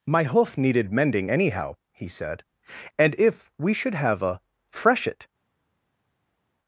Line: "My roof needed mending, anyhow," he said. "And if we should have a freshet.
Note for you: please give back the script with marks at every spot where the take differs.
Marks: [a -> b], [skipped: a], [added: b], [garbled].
"My [roof -> hoof] needed mending, anyhow," he said. "And if we should have a freshet.